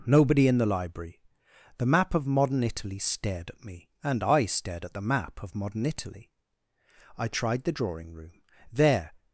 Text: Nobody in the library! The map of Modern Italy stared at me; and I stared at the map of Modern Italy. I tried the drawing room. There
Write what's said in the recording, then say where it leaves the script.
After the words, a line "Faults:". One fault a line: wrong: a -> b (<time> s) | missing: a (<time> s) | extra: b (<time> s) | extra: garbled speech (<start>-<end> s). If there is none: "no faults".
Nobody in the library! The map of Modern Italy stared at me; and I stared at the map of Modern Italy. I tried the drawing room. There
Faults:
no faults